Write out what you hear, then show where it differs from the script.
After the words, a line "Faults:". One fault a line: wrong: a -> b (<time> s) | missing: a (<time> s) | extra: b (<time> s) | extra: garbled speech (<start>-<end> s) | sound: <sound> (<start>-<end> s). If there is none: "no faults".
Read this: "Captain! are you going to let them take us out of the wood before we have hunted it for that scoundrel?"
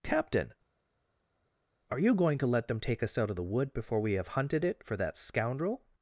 "Captain! are you going to let them take us out of the wood before we have hunted it for that scoundrel?"
Faults:
no faults